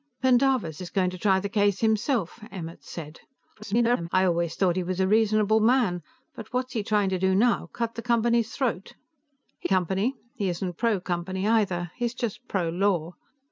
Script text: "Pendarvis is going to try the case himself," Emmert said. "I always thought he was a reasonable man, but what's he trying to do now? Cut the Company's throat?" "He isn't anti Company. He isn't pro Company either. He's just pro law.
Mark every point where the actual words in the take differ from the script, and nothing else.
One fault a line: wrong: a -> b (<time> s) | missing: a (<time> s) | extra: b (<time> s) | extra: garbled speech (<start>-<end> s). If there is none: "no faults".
extra: garbled speech (3.5-4.1 s)
missing: isn't anti (9.7 s)